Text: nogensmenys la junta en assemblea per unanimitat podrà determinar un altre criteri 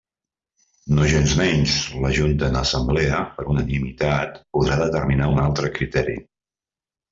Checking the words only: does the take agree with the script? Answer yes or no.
yes